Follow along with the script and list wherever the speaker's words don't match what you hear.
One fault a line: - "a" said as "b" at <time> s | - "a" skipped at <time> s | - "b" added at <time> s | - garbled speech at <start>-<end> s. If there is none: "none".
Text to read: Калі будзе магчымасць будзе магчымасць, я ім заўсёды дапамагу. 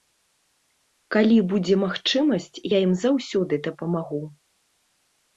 - "будзе магчымасць" skipped at 2.6 s